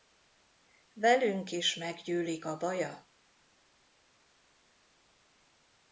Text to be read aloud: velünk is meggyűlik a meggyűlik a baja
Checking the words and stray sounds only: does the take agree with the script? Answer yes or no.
no